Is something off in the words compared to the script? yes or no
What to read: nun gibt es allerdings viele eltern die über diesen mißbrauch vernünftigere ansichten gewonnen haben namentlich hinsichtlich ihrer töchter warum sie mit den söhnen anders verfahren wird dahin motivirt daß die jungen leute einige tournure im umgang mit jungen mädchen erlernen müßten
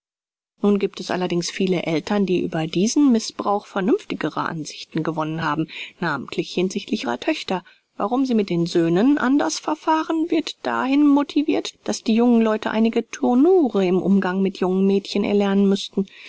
no